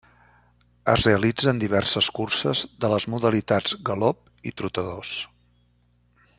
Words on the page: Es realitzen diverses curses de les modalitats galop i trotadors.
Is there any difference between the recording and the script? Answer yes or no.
no